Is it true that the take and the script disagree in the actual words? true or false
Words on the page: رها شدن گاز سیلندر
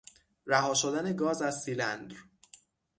true